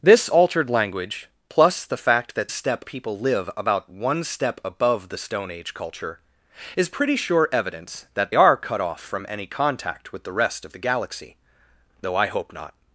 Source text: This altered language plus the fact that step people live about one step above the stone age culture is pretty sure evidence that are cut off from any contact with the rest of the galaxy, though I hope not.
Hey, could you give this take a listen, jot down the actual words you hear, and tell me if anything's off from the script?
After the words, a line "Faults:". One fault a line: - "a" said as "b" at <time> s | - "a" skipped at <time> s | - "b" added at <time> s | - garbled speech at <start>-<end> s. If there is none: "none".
This altered language plus the fact that step people live about one step above the stone age culture is pretty sure evidence that are cut off from any contact with the rest of the galaxy, though I hope not.
Faults:
none